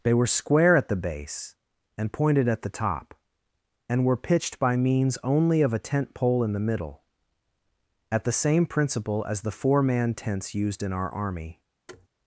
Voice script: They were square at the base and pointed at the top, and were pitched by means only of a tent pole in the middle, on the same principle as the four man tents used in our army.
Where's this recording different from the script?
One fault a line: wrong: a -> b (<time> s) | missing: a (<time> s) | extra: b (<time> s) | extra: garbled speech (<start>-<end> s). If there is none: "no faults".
wrong: on -> at (8.1 s)